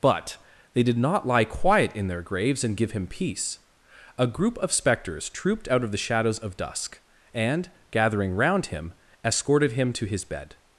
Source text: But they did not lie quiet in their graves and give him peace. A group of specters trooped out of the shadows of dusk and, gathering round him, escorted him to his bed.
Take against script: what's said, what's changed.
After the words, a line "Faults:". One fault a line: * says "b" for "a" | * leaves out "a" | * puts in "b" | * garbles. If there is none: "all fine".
But they did not lie quiet in their graves and give him peace. A group of specters trooped out of the shadows of dusk and, gathering round him, escorted him to his bed.
Faults:
all fine